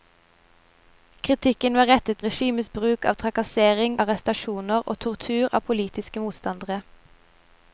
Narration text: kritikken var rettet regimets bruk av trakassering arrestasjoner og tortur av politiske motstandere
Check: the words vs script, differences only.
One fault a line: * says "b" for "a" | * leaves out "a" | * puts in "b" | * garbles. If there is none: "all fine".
all fine